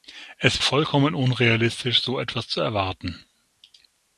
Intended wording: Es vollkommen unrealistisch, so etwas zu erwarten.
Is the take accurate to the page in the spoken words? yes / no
yes